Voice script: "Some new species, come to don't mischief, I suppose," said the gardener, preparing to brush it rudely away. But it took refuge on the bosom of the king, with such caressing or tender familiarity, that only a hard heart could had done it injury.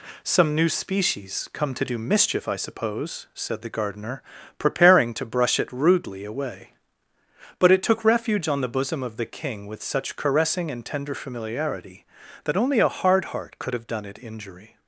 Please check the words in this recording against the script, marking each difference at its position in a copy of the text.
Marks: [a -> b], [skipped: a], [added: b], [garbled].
"Some new species, come to [don't -> do] mischief, I suppose," said the gardener, preparing to brush it rudely away. But it took refuge on the bosom of the king, with such caressing [or -> and] tender familiarity, that only a hard heart could [had -> have] done it injury.